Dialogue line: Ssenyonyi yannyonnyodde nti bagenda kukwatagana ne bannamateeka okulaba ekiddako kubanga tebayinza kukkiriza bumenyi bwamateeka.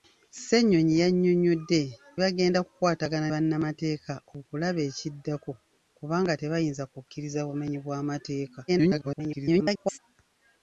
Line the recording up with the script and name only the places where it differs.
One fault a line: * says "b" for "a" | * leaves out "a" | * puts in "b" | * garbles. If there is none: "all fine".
* leaves out "nti"
* leaves out "ne"
* garbles